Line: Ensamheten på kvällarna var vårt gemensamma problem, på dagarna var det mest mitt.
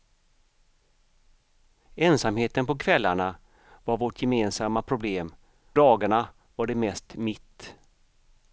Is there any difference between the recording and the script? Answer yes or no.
yes